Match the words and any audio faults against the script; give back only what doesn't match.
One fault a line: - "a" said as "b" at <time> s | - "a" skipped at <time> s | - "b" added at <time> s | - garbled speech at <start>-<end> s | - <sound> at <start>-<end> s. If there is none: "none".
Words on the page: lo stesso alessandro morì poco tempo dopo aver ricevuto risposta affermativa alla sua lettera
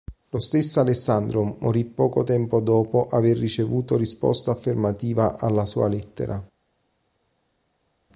none